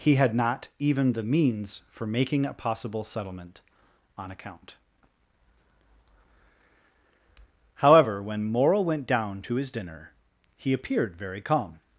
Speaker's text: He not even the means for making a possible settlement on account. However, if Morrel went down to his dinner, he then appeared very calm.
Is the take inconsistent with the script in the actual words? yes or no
yes